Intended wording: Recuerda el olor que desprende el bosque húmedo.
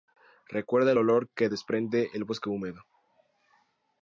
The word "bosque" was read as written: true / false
true